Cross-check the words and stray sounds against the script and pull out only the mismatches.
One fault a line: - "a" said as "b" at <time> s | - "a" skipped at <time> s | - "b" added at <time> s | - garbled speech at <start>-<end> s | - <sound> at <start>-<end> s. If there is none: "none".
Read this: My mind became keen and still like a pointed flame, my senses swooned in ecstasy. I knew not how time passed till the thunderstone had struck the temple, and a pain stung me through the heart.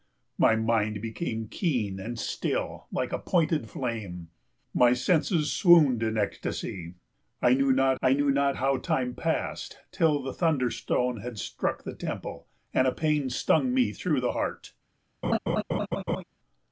- "I knew not" added at 8.0 s
- laugh at 15.2-16.2 s